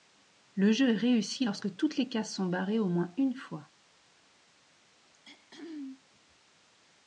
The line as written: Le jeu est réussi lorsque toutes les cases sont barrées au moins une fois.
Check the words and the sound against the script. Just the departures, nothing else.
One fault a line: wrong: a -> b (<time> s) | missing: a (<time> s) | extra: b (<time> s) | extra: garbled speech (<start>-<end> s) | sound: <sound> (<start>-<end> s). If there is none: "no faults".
sound: throat clearing (5.1-6.0 s)